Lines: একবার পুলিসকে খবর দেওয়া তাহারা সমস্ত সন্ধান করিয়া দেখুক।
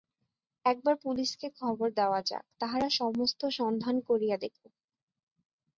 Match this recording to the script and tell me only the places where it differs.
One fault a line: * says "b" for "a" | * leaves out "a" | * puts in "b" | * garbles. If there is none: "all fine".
* puts in "যাক"